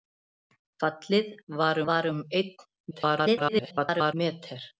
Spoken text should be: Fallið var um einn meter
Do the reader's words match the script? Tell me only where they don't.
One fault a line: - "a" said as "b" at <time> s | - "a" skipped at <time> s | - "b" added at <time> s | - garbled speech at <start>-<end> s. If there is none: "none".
- "var" added at 1.9 s
- garbled speech at 2.9-4.1 s